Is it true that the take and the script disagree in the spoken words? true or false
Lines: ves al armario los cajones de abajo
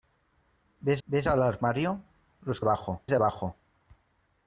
true